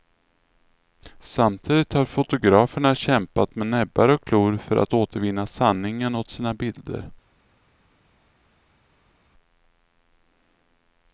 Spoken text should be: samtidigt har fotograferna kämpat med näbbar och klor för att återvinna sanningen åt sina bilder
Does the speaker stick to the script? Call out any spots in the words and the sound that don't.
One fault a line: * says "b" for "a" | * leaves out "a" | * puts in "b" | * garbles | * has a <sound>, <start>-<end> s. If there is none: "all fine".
all fine